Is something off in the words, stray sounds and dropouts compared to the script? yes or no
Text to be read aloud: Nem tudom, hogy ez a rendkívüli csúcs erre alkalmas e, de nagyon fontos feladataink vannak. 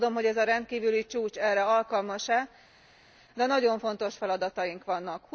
no